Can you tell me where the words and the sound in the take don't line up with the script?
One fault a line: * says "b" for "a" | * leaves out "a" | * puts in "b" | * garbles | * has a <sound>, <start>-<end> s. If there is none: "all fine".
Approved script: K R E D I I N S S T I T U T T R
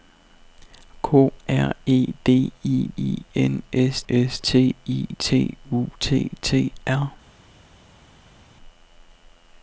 all fine